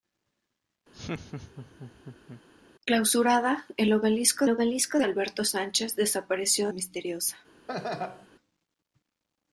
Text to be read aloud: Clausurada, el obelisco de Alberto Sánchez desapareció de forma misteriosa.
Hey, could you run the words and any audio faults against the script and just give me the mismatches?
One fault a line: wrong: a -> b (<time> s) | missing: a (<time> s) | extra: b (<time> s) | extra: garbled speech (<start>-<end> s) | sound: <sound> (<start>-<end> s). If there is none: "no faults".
sound: laugh (0.9-2.4 s)
extra: obelisco (4.5 s)
missing: de forma (6.7 s)
sound: laugh (7.7-8.3 s)